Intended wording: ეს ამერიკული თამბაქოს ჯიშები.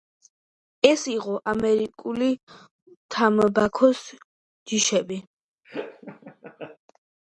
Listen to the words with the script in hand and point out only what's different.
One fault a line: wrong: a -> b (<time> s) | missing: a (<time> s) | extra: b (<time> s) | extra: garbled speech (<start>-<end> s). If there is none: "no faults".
extra: იყო (1.1 s)